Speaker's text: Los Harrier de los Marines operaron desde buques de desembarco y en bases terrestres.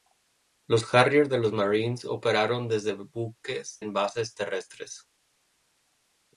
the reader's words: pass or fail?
fail